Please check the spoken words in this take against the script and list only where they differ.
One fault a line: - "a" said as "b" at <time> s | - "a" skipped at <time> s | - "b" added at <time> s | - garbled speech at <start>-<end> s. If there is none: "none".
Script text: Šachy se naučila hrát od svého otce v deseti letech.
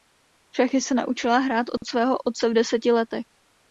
none